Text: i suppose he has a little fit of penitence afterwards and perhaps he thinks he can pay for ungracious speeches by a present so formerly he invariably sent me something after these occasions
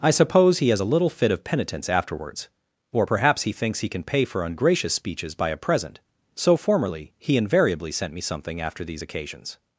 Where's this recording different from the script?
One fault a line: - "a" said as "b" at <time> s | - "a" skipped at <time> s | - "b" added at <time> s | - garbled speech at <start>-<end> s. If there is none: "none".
- "and" said as "or" at 2.9 s